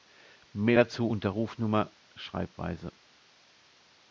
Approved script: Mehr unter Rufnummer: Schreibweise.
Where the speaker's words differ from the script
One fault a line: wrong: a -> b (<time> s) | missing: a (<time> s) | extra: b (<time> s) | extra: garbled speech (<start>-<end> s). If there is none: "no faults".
extra: dazu (0.7 s)